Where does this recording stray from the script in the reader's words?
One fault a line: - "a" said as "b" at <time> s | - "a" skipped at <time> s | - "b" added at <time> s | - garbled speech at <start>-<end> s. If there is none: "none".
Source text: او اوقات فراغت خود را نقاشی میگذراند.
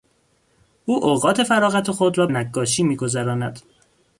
none